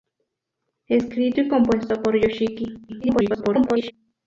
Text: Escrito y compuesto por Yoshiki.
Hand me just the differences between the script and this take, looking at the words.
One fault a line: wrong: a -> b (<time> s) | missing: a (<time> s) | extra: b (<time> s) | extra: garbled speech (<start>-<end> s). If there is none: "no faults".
extra: garbled speech (2.9-3.9 s)